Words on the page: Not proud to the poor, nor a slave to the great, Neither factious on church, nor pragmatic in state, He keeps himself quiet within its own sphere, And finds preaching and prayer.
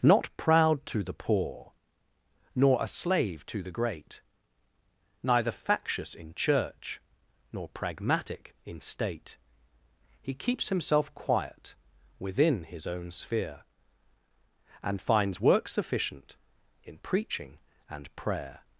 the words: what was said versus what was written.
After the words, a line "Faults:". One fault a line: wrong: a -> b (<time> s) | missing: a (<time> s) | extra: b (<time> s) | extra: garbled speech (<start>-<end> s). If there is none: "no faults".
Not proud to the poor, nor a slave to the great, Neither factious in church, nor pragmatic in state, He keeps himself quiet within his own sphere, And finds work sufficient in preaching and prayer.
Faults:
wrong: on -> in (6.1 s)
wrong: its -> his (12.6 s)
extra: work sufficient in (15.4 s)